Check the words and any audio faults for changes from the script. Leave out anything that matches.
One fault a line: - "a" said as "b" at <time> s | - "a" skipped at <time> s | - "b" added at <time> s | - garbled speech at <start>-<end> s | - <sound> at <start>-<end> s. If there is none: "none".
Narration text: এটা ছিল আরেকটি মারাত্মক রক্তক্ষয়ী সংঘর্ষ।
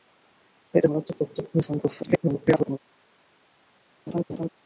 - "ছিল আরেকটি" skipped at 0.9 s
- garbled speech at 2.0-2.8 s
- laugh at 4.1-4.5 s